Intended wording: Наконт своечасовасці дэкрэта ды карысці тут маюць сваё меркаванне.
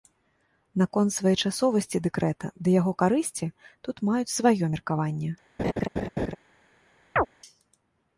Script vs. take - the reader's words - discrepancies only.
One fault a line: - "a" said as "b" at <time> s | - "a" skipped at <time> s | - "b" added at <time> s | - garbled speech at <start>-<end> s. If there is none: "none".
- "яго" added at 2.8 s